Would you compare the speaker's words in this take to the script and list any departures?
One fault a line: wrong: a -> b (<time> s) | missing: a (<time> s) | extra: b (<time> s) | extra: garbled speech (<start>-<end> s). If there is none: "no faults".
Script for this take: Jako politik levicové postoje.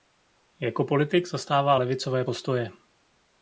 extra: zastává (1.3 s)